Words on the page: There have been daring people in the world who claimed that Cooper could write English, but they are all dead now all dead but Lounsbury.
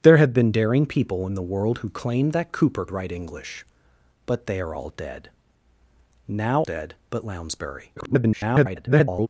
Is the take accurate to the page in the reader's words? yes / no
no